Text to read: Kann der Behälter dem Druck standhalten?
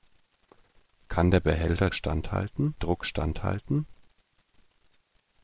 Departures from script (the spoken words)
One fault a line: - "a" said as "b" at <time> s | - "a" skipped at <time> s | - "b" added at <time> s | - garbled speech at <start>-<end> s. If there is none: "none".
- "dem" said as "standhalten" at 1.9 s